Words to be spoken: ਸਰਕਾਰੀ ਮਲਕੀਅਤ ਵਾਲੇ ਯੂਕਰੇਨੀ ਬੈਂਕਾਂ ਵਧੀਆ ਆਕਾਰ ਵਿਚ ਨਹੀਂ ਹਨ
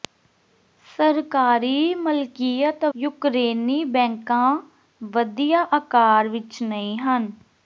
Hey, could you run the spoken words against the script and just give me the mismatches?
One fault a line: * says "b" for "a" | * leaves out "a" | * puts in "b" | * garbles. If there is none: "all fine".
* leaves out "ਵਾਲੇ"